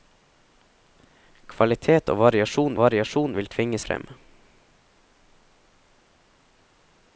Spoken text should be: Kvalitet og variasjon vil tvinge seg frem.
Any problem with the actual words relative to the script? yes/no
yes